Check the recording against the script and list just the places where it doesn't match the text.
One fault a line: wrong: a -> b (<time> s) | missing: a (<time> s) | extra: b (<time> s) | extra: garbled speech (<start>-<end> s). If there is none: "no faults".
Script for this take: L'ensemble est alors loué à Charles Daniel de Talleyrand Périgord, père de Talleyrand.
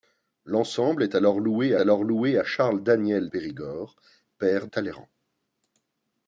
extra: alors loué (1.8 s)
missing: de Talleyrand (3.3 s)
missing: de (4.7 s)